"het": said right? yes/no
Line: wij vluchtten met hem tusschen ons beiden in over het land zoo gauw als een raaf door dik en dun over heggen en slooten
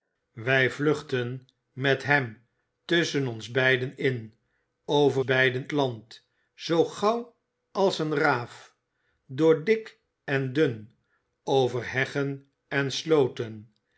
no